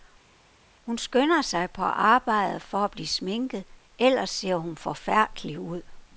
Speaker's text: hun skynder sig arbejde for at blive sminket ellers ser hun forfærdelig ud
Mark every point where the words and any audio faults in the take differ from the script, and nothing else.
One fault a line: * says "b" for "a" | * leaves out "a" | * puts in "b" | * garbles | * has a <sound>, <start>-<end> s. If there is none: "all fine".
* puts in "på"